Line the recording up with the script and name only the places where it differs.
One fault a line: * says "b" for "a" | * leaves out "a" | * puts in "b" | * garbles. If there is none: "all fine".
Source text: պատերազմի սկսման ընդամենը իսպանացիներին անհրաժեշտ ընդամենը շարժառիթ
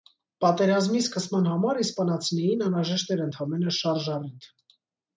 * says "համար" for "ընդամենը"
* puts in "էր"